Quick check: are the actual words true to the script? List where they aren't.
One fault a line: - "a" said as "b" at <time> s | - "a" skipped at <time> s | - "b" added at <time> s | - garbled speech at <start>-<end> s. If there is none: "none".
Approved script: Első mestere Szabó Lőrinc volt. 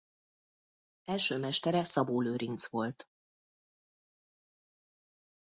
none